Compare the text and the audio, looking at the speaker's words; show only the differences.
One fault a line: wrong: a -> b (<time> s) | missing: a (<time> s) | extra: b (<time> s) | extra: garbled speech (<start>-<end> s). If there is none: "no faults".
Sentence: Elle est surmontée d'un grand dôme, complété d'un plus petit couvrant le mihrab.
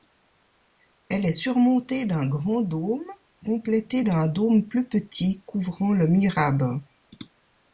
extra: dôme (4.3 s)